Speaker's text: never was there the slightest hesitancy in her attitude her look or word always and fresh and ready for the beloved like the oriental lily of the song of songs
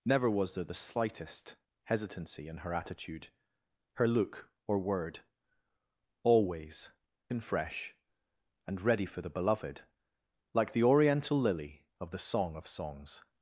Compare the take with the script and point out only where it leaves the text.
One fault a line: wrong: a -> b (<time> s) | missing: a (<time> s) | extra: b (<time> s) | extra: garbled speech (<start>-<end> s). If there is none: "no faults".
no faults